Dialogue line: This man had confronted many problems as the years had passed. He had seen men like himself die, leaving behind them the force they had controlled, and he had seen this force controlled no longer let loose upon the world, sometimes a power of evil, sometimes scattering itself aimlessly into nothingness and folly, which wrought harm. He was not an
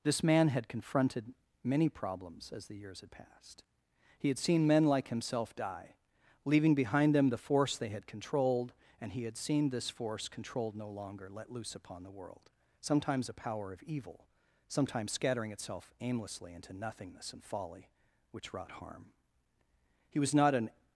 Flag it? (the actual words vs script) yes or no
no